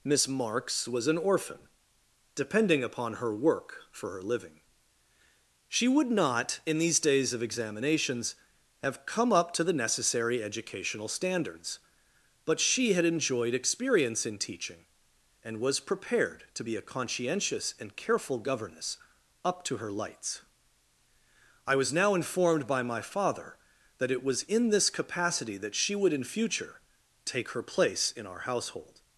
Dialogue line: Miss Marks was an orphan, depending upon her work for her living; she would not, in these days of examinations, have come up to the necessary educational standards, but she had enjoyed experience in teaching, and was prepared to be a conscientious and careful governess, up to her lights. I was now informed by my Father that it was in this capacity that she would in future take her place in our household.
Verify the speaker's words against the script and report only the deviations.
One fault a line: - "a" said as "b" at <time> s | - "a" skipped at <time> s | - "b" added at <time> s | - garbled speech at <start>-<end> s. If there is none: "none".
none